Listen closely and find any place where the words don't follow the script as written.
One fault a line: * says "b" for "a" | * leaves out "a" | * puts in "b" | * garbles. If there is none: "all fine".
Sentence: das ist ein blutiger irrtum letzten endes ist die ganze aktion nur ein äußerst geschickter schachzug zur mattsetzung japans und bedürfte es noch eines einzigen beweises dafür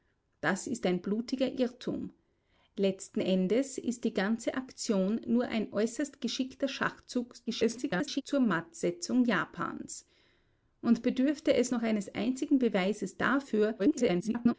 * garbles
* garbles